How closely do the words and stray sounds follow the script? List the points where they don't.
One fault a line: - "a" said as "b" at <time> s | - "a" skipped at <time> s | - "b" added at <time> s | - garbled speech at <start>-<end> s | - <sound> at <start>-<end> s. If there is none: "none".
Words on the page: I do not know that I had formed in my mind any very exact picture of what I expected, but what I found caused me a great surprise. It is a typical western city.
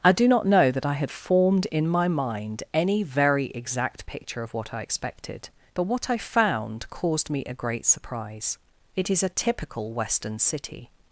none